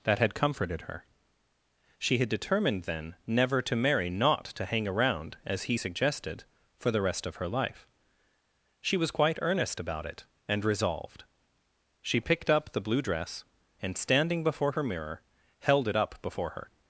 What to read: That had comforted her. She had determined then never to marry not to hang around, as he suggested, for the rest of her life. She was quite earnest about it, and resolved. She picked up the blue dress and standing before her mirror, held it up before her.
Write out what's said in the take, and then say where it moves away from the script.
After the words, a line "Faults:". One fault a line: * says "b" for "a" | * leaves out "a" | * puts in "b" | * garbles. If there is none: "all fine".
That had comforted her. She had determined then never to marry not to hang around, as he suggested, for the rest of her life. She was quite earnest about it, and resolved. She picked up the blue dress and standing before her mirror, held it up before her.
Faults:
all fine